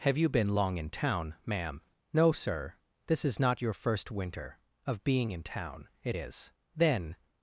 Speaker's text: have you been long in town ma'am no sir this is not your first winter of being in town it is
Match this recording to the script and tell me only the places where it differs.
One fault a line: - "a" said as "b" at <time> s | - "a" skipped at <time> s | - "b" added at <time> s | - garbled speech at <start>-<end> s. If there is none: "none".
- "then" added at 6.8 s